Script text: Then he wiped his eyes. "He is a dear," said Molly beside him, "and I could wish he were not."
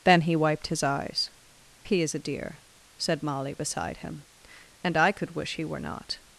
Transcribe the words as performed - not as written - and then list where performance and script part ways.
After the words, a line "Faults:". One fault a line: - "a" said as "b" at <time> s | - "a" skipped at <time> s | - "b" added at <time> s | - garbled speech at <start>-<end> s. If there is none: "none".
Then he wiped his eyes. "He is a dear," said Molly beside him, "and I could wish he were not."
Faults:
none